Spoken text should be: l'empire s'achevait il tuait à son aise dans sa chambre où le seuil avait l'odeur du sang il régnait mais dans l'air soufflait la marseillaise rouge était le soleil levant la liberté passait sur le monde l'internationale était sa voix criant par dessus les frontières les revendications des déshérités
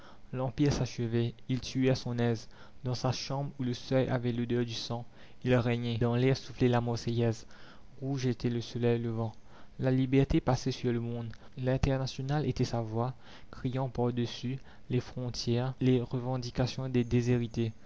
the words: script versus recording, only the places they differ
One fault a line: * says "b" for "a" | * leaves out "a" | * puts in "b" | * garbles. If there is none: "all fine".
* leaves out "mais"